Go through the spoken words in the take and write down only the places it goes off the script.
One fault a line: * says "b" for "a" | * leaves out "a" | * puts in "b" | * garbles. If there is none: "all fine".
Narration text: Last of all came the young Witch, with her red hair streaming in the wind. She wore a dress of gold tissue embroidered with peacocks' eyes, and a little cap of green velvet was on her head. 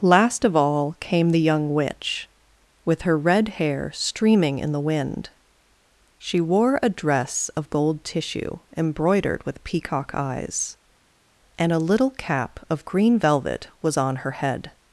* says "peacock" for "peacocks"